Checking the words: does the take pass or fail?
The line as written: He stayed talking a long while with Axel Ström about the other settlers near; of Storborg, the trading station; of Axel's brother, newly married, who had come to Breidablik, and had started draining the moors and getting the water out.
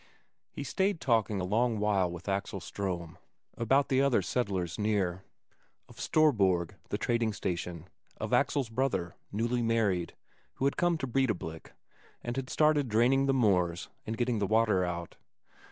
pass